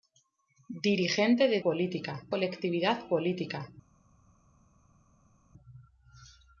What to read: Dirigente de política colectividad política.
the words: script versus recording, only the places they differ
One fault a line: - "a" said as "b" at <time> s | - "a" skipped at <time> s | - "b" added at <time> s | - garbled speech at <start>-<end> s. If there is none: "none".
none